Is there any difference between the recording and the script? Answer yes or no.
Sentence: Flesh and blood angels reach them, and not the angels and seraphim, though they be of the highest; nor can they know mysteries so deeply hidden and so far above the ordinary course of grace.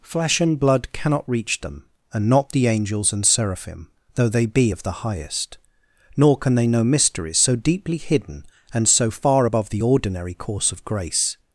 yes